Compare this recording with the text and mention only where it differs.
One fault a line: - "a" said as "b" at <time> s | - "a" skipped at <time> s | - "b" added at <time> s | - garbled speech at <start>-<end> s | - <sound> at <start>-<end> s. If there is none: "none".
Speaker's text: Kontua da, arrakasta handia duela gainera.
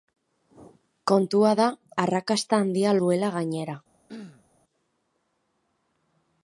- throat clearing at 4.1-4.4 s